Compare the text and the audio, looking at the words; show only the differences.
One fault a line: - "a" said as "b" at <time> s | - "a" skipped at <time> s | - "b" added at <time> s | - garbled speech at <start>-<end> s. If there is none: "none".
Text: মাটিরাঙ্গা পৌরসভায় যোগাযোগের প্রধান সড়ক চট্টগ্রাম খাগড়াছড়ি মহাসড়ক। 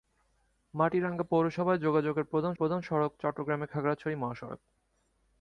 - "প্রধান" added at 2.5 s